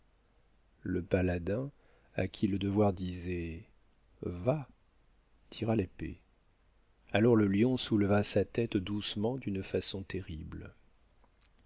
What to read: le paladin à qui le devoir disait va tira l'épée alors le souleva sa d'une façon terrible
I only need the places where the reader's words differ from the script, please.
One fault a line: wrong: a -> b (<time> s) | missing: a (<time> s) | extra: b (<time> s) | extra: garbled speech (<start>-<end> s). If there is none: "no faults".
extra: lion (7.5 s)
extra: tête doucement (8.4 s)